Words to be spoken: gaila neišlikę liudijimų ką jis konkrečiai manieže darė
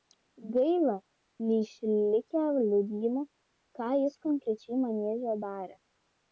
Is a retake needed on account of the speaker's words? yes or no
no